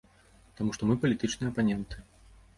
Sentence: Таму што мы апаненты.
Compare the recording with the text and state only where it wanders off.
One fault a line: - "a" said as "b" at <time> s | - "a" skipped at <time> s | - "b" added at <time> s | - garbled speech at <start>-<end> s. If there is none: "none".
- "палітычныя" added at 1.0 s